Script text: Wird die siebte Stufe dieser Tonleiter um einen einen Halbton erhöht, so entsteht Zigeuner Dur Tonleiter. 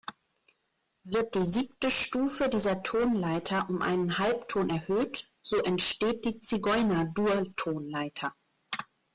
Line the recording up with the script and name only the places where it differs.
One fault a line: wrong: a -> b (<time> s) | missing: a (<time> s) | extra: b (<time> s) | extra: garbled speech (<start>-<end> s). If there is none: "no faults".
missing: einen (4.2 s)
extra: die (6.2 s)